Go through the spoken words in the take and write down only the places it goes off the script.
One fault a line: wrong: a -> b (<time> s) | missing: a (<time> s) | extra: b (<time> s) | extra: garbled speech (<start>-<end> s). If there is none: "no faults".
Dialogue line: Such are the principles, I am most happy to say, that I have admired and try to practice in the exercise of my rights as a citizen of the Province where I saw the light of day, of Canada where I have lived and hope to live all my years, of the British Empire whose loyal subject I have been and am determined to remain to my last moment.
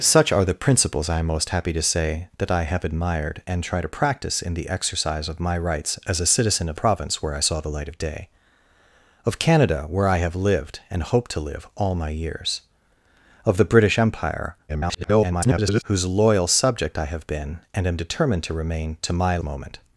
missing: the (6.8 s)
extra: garbled speech (14.7-15.8 s)
missing: last (19.4 s)